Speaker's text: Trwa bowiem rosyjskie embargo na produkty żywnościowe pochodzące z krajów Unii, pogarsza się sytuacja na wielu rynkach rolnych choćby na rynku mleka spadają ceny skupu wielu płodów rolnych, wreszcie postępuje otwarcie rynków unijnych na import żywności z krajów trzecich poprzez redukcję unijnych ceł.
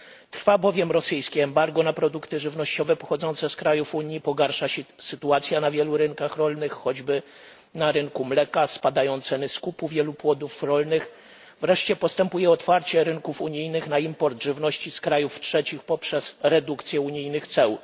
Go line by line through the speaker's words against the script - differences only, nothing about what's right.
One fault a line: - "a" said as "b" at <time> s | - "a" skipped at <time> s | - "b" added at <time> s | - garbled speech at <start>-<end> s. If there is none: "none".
none